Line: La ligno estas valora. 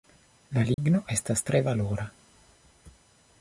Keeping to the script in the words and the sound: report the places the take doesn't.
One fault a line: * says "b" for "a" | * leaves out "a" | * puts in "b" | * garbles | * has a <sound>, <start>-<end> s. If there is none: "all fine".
* has a dropout, 0.7-0.8 s
* puts in "tre"